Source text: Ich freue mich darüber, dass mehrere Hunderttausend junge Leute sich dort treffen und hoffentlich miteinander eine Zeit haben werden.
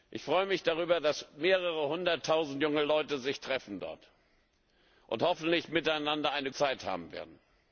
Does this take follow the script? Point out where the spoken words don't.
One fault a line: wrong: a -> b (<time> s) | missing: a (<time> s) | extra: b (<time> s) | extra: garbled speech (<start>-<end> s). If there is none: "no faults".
no faults